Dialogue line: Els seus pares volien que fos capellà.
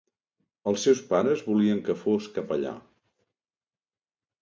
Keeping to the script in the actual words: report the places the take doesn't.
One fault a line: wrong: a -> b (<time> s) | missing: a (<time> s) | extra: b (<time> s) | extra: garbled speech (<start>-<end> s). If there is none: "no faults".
no faults